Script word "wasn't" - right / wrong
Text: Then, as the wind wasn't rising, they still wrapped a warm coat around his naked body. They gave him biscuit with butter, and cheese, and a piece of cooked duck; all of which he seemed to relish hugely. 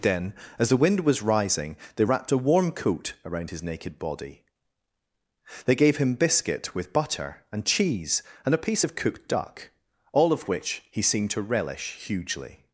wrong